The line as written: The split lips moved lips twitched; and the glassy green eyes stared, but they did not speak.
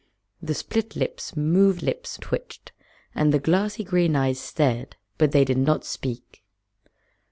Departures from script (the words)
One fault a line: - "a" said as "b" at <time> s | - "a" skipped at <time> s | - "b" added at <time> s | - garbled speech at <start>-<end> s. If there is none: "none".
none